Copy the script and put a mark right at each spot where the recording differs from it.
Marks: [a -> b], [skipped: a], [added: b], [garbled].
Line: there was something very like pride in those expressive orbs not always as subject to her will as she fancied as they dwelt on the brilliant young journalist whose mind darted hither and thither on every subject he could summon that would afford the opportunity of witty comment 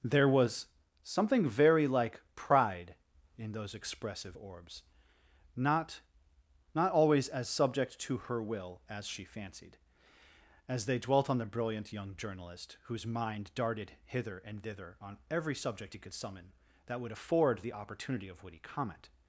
there was something very like pride in those expressive orbs not [added: not] always as subject to her will as she fancied as they dwelt on the brilliant young journalist whose mind darted hither and thither on every subject he could summon that would afford the opportunity of witty comment